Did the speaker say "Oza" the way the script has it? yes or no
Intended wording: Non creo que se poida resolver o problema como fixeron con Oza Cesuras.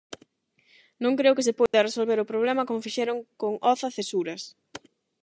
yes